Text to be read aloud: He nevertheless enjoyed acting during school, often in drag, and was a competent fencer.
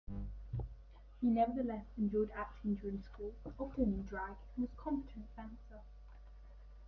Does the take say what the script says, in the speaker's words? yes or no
yes